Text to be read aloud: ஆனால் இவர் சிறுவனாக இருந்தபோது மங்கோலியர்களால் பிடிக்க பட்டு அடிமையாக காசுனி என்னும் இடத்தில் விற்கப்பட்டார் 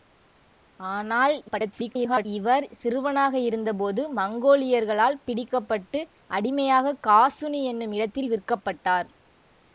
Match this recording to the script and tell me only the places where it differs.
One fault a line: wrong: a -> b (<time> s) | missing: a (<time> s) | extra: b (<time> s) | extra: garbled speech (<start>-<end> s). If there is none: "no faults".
extra: garbled speech (1.5-2.3 s)